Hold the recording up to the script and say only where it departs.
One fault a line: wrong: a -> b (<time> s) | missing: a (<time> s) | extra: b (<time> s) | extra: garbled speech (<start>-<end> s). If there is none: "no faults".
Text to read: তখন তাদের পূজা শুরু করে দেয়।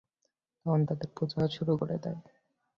no faults